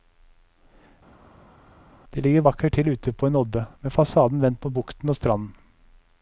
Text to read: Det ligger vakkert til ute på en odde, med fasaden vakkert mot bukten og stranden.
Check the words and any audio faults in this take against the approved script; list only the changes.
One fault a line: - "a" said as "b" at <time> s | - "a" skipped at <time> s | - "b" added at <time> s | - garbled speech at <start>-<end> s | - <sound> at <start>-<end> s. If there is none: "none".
- "vakkert" said as "vendt" at 4.4 s